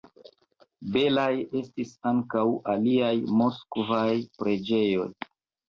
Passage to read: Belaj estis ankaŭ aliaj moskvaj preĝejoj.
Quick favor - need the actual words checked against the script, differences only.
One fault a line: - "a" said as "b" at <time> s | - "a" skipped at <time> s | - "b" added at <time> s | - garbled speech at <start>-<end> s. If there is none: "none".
none